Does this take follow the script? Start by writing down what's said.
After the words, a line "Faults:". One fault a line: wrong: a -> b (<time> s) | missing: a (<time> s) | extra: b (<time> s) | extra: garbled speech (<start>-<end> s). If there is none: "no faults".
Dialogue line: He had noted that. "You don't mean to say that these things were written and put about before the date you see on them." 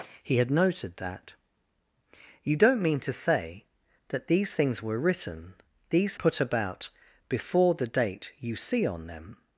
He had noted that. "You don't mean to say that these things were written these put about before the date you see on them."
Faults:
wrong: and -> these (5.9 s)